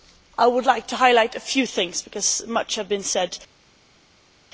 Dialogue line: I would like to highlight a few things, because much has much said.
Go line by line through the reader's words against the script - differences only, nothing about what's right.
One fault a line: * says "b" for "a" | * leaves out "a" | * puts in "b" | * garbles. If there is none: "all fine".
* says "been" for "much"